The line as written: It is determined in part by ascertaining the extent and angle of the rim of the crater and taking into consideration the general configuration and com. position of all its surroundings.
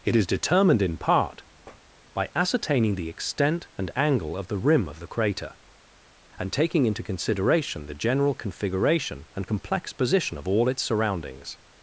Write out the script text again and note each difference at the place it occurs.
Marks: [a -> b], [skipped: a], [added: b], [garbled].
It is determined in part by ascertaining the extent and angle of the rim of the crater and taking into consideration the general configuration and [com. -> complex] position of all its surroundings.